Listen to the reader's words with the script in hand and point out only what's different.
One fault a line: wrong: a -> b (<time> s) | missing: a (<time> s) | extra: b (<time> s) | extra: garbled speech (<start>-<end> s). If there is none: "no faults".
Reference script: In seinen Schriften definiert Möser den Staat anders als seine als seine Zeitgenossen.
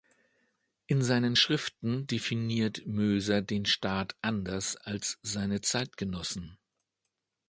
missing: als seine (5.6 s)